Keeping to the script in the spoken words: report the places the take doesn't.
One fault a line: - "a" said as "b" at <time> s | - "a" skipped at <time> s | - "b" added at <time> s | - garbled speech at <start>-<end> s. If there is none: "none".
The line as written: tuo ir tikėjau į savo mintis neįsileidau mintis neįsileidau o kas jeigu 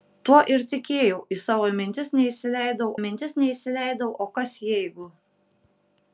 none